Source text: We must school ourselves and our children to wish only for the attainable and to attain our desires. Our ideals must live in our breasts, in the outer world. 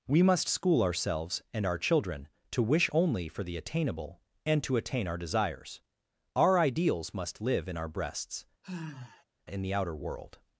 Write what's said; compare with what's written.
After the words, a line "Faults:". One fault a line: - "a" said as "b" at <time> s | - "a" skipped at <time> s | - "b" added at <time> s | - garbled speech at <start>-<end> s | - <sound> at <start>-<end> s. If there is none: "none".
We must school ourselves and our children to wish only for the attainable and to attain our desires. Our ideals must live in our breasts, in the outer world.
Faults:
- sigh at 8.6-9.2 s